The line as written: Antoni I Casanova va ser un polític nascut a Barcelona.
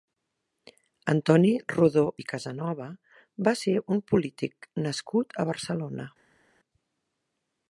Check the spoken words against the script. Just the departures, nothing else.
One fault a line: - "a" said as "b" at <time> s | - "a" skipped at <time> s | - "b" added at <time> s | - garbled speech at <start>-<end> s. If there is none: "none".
- "Rodó" added at 1.7 s